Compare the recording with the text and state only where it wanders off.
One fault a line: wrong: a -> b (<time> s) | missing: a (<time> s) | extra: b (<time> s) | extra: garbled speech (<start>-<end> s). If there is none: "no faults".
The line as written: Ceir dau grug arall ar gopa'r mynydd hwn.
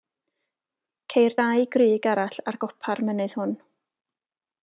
no faults